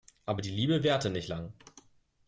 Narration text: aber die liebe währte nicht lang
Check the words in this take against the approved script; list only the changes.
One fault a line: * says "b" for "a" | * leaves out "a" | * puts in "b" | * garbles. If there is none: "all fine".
all fine